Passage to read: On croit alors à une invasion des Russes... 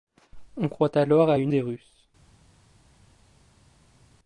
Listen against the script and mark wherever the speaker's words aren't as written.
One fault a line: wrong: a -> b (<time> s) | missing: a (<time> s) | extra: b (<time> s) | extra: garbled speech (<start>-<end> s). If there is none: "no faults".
missing: invasion (1.5 s)